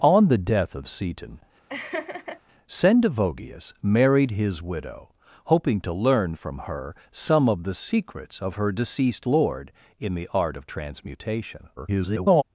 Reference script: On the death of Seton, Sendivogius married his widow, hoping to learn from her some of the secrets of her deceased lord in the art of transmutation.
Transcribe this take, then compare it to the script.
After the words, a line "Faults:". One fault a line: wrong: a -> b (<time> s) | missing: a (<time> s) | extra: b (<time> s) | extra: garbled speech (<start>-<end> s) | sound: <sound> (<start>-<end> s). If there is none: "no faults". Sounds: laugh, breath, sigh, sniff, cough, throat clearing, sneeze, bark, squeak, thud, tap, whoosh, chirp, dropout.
On the death of Seton, Sendivogius married his widow, hoping to learn from her some of the secrets of her deceased lord in the art of transmutation. [garbled]
Faults:
sound: laugh (1.7-2.4 s)
extra: garbled speech (11.8-12.4 s)